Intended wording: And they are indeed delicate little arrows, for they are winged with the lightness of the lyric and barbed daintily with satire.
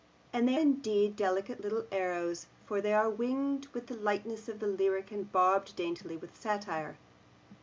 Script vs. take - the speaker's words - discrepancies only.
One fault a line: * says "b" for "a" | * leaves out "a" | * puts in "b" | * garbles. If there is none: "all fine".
* leaves out "are"